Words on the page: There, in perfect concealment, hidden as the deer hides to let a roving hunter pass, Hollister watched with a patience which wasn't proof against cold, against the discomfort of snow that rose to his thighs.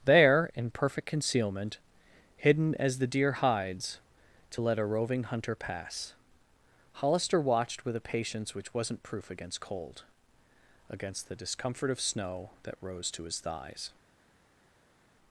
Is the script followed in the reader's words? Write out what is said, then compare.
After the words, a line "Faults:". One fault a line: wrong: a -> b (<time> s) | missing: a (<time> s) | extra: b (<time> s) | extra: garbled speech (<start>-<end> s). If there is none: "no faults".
There, in perfect concealment, hidden as the deer hides to let a roving hunter pass, Hollister watched with a patience which wasn't proof against cold, against the discomfort of snow that rose to his thighs.
Faults:
no faults